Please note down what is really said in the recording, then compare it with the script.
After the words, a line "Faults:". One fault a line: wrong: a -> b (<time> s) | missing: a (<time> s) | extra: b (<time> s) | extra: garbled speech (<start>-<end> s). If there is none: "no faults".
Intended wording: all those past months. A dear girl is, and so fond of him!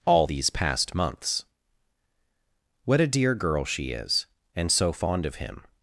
all these past months. What a dear girl she is, and so fond of him!
Faults:
wrong: those -> these (0.2 s)
extra: What (2.8 s)
extra: she (3.6 s)